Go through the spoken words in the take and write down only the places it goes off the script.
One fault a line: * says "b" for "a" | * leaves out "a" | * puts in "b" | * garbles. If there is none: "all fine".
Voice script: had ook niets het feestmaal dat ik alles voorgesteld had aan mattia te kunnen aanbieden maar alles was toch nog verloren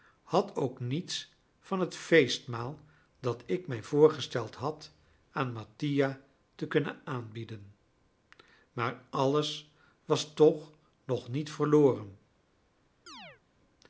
* puts in "van"
* says "mij" for "alles"
* puts in "niet"